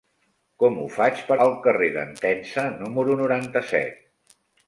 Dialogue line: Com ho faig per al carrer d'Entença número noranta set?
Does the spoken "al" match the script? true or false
true